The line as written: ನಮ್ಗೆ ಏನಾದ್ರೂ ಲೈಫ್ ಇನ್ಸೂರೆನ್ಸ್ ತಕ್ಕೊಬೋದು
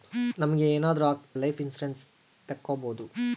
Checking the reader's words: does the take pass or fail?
pass